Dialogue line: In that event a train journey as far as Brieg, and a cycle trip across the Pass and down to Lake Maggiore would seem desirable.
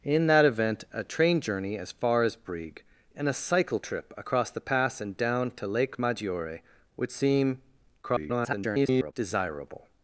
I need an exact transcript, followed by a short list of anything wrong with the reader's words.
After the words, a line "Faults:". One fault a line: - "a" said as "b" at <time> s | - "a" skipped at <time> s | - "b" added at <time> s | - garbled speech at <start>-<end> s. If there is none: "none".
In that event a train journey as far as Brieg, and a cycle trip across the Pass and down to Lake Maggiore would seem [garbled] desirable.
Faults:
- garbled speech at 8.0-9.1 s